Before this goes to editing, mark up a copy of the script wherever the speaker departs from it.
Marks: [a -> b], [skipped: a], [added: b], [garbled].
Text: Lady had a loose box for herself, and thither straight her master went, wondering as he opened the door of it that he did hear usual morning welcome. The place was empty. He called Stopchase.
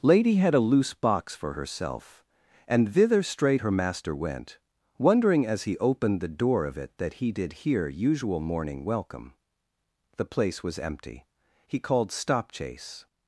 Lady had a loose box for herself, and thither straight her master went, wondering as he opened the door of it that he did hear usual morning welcome. The place was empty. He called Stopchase.